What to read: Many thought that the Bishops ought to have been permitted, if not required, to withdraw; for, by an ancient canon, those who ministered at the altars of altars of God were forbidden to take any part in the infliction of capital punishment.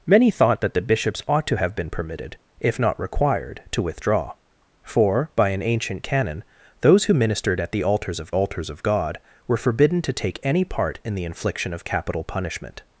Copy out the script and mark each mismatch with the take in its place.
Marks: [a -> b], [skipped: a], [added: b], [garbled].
Many thought that the Bishops ought to have been permitted, if not required, to withdraw; for, by an ancient canon, those who ministered at the altars of altars of God were forbidden to take any part in the infliction of capital punishment.